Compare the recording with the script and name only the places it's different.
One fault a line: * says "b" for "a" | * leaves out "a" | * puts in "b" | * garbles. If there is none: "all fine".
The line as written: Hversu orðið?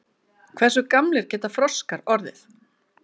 * puts in "gamlir geta froskar"